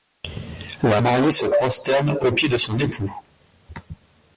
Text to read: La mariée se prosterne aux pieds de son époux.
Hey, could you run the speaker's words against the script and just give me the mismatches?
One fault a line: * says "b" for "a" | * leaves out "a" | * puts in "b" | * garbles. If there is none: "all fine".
all fine